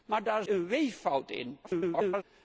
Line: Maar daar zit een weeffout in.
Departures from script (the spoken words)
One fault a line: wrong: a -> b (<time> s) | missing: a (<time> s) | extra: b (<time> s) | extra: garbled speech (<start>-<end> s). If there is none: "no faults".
missing: zit (0.5 s)
extra: garbled speech (1.6-2.2 s)